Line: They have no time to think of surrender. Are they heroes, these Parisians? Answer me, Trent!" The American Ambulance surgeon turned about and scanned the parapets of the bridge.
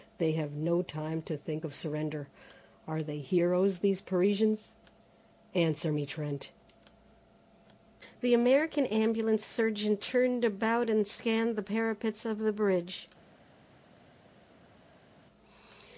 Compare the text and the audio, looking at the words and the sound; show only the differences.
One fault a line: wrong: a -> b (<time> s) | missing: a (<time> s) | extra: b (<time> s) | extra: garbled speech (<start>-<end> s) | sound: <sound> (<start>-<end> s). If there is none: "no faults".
no faults